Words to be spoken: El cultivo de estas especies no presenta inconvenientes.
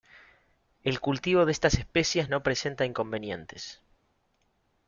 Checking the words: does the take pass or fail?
pass